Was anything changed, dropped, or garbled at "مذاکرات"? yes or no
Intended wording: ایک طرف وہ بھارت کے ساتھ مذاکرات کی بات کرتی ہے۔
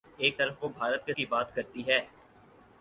yes